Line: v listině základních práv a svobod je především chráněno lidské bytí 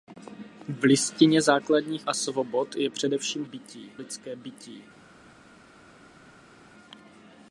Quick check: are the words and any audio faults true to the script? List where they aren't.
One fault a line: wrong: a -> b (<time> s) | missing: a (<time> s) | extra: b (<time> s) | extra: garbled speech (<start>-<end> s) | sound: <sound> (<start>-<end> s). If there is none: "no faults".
missing: práv (2.0 s)
wrong: chráněno -> bytí (3.4 s)